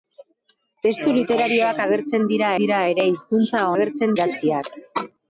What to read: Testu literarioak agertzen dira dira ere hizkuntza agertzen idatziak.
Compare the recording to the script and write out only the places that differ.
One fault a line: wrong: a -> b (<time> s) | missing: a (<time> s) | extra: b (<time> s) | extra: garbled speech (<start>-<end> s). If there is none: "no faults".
no faults